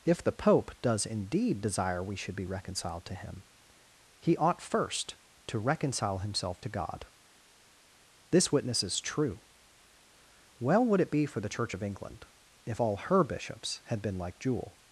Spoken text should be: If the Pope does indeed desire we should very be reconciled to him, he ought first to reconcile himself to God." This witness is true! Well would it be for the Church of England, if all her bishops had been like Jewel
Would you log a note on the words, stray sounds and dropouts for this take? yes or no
yes